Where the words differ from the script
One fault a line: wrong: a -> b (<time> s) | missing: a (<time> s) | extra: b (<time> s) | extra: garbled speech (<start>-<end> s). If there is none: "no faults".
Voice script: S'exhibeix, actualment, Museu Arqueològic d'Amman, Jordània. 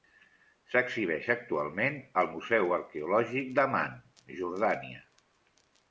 extra: al (2.2 s)